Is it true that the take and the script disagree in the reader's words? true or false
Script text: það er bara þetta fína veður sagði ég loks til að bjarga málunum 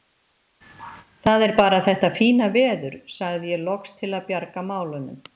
false